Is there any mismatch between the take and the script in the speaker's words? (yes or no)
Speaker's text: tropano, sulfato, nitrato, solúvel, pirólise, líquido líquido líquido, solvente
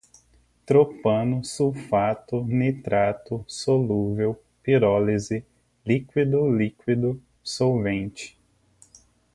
yes